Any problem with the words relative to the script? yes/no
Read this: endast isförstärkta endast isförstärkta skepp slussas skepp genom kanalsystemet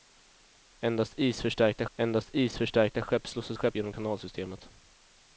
no